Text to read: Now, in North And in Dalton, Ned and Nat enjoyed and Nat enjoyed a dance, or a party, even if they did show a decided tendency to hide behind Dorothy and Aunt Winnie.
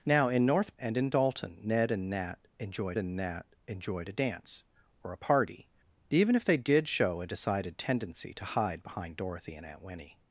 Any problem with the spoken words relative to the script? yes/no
no